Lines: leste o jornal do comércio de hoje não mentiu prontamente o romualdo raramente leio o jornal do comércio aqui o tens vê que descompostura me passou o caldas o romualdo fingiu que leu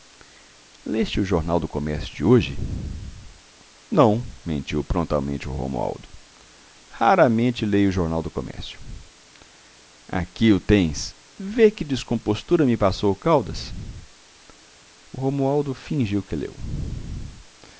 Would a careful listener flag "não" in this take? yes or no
no